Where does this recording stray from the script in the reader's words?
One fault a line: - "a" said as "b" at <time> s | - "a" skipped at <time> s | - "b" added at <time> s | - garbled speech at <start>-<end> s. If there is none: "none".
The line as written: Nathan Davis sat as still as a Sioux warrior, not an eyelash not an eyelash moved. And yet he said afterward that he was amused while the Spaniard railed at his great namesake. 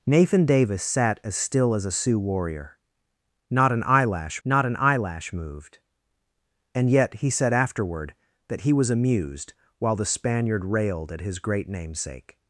none